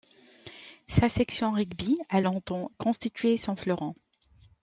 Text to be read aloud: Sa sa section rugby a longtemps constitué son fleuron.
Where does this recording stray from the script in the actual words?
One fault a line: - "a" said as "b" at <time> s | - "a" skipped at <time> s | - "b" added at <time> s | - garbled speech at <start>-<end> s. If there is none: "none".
- "sa" skipped at 1.1 s